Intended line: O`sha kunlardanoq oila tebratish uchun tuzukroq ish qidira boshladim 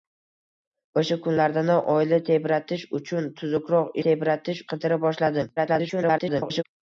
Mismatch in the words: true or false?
true